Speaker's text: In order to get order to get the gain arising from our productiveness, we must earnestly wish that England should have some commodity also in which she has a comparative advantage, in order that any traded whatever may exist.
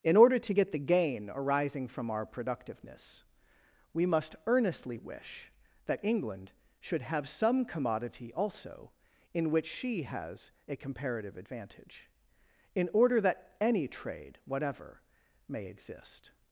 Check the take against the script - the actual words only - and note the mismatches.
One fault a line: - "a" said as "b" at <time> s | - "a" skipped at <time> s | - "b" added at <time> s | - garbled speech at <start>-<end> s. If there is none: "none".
- "order to get" skipped at 0.7 s
- "traded" said as "trade" at 13.9 s